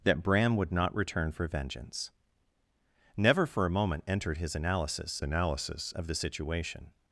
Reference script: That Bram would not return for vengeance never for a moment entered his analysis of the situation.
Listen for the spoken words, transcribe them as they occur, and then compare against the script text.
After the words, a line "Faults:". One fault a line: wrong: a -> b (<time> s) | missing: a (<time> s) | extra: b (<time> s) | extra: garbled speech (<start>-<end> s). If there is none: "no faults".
That Bram would not return for vengeance never for a moment entered his analysis analysis of the situation.
Faults:
extra: analysis (5.2 s)